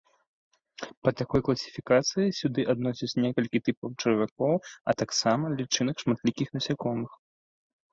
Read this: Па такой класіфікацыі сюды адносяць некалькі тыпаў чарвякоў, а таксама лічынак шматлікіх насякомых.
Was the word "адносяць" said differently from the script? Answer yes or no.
no